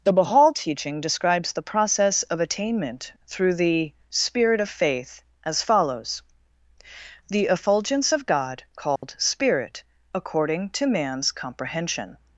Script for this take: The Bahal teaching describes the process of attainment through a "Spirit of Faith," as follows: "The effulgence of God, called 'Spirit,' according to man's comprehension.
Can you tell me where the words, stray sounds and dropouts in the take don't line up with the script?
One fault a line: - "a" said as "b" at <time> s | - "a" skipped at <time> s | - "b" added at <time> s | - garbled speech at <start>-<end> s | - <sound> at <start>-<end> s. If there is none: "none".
- "a" said as "the" at 3.5 s
- dropout at 9.0-9.0 s